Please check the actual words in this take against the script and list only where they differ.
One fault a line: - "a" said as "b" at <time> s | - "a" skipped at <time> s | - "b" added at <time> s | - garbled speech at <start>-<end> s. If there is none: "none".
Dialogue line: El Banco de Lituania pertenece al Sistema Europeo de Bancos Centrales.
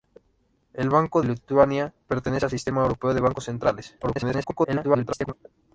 - "de" skipped at 1.2 s
- garbled speech at 4.0-5.3 s